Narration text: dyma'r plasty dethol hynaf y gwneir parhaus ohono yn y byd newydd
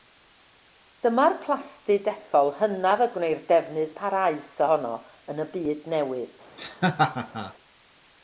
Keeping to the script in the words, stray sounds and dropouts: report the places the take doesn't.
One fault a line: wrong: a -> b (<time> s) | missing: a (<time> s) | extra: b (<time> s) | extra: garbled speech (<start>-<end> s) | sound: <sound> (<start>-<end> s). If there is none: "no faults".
extra: defnydd (3.5 s)
sound: laugh (6.6-7.5 s)